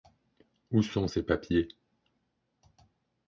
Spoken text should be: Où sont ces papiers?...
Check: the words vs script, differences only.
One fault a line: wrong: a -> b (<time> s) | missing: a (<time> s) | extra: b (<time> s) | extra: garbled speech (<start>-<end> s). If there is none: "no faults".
no faults